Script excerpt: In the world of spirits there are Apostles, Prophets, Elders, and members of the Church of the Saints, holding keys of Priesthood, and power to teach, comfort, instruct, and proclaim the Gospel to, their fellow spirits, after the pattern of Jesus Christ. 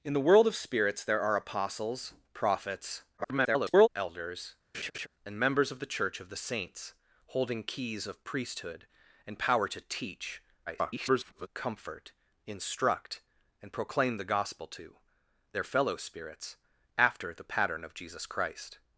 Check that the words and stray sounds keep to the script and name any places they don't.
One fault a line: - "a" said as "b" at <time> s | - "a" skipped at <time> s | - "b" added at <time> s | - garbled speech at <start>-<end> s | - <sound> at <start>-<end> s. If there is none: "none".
- garbled speech at 3.2-3.9 s
- laugh at 4.7-5.1 s
- garbled speech at 10.7-11.5 s